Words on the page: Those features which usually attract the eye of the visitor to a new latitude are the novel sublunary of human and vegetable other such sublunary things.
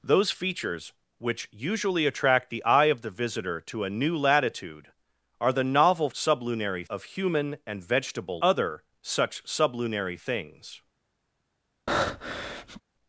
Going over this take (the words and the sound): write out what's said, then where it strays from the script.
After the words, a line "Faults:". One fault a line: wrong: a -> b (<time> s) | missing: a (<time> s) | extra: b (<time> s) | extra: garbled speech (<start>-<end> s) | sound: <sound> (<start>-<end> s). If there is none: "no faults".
Those features which usually attract the eye of the visitor to a new latitude are the novel sublunary of human and vegetable other such sublunary things.
Faults:
sound: breath (11.9-12.8 s)